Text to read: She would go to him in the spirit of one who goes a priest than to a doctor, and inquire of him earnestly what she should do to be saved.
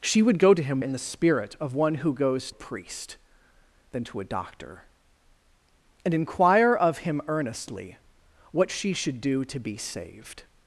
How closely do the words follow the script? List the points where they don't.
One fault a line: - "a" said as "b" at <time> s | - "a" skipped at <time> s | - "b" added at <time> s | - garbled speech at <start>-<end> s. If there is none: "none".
none